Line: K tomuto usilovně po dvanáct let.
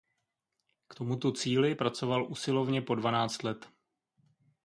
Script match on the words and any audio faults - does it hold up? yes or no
no